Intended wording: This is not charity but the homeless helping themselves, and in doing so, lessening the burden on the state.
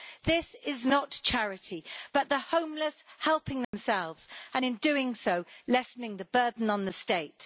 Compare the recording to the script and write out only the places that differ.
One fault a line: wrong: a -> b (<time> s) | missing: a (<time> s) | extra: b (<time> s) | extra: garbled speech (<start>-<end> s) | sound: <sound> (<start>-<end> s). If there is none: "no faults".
sound: dropout (3.6-3.7 s)